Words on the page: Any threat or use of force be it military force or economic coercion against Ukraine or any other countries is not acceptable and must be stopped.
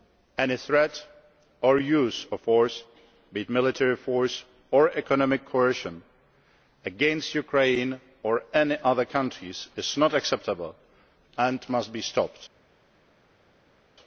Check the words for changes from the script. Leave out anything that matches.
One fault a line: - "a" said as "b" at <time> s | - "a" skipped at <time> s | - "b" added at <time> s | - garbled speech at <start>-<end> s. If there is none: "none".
none